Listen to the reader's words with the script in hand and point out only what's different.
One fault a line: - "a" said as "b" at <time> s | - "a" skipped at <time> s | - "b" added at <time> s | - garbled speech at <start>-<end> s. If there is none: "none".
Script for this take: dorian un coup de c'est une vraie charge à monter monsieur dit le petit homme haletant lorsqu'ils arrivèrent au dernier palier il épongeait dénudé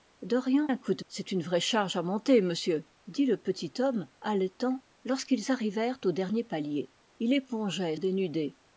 none